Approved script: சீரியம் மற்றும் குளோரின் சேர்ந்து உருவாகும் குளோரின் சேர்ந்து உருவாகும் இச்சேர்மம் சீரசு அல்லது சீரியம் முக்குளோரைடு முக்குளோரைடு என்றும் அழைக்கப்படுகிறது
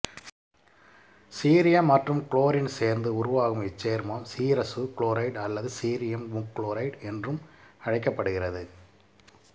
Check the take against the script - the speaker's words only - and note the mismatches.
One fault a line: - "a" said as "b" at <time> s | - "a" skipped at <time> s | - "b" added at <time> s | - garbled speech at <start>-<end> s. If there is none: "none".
- "குளோரின் சேர்ந்து உருவாகும்" skipped at 3.6 s
- "குளோரைடு" added at 5.0 s
- "முக்குளோரைடு" skipped at 7.0 s